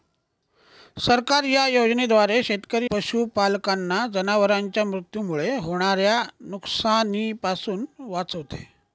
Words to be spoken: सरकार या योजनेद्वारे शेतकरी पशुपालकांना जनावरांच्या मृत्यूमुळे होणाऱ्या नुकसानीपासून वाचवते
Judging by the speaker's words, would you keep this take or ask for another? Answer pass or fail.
pass